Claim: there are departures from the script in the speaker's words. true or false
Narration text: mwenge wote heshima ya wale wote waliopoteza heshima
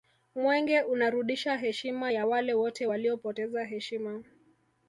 true